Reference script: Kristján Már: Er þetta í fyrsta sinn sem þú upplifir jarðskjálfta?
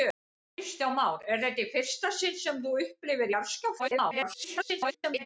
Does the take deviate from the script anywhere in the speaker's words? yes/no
yes